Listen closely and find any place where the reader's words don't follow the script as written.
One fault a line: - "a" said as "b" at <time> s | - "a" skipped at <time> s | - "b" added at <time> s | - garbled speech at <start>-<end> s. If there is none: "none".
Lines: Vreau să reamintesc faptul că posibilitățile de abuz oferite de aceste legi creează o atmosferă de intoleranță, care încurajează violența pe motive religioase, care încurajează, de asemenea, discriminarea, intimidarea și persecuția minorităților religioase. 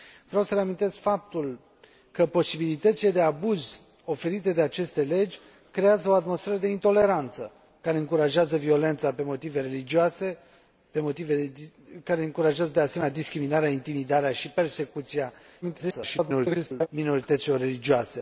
- garbled speech at 15.6-16.9 s